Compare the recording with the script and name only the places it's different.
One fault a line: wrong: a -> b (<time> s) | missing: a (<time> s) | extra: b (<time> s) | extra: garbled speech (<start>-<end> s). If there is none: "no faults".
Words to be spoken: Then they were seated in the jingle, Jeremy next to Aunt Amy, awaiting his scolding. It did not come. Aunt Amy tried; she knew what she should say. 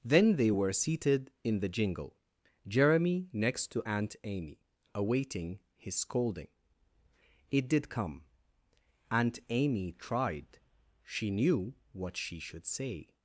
missing: not (7.9 s)